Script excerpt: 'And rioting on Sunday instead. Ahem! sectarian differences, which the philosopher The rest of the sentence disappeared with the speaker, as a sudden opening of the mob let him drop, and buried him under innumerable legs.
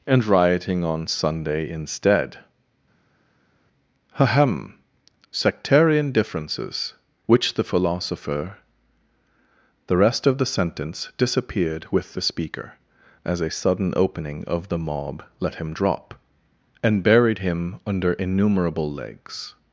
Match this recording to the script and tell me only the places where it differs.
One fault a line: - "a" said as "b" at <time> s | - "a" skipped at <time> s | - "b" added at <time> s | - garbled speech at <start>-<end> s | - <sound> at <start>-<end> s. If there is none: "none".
none